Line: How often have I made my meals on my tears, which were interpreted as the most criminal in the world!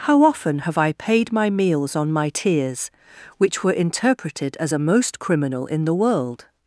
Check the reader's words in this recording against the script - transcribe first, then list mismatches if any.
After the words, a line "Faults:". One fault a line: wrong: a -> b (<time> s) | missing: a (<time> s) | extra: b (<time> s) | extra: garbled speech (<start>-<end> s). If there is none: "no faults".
How often have I paid my meals on my tears, which were interpreted as a most criminal in the world!
Faults:
wrong: made -> paid (0.9 s)
wrong: the -> a (4.7 s)